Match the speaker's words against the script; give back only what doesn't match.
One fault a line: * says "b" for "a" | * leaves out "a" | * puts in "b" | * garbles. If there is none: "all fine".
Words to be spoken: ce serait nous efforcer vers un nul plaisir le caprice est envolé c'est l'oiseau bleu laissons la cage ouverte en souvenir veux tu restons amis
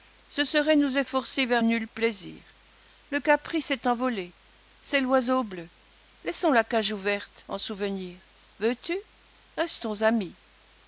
* leaves out "un"